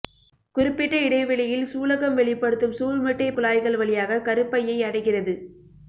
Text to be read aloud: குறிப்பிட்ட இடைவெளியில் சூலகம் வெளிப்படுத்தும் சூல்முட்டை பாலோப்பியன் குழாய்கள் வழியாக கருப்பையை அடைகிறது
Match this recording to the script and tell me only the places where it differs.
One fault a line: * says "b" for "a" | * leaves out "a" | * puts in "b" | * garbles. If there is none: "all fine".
* leaves out "பாலோப்பியன்"